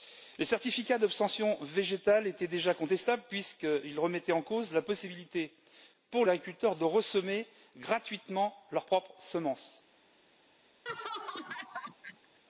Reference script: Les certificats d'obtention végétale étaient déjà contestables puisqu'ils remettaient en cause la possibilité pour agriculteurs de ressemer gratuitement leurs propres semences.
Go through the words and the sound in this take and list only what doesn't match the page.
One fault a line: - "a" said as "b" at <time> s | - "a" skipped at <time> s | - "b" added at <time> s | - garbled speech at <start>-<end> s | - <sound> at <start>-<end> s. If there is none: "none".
- laugh at 10.9-12.4 s